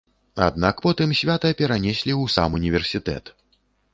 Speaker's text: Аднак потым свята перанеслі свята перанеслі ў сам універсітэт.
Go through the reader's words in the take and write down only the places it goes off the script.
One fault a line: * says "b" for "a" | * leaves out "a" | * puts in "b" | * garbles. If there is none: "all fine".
* leaves out "свята перанеслі"